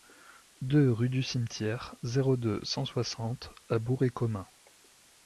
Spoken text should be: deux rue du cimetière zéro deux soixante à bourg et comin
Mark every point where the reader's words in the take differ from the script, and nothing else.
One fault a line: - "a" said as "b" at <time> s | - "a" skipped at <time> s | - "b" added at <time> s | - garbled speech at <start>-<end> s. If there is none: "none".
- "cent" added at 2.6 s